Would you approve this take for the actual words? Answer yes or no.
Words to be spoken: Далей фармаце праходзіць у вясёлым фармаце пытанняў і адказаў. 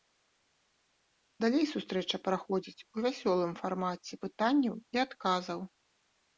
no